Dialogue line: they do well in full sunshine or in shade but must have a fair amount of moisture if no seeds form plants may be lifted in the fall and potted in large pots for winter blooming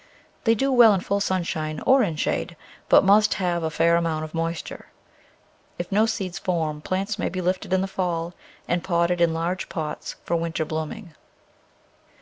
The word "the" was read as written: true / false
true